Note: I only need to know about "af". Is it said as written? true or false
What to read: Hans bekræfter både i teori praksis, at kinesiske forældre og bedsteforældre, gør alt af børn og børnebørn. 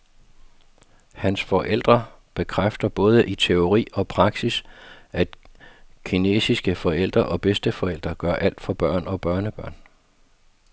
false